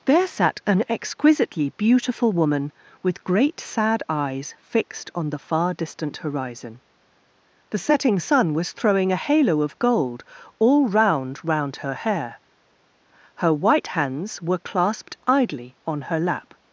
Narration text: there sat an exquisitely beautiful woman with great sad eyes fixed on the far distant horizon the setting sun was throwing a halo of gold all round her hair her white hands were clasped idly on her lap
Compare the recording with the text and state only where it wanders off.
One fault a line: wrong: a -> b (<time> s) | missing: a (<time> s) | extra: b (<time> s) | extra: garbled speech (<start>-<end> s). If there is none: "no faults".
extra: round (11.4 s)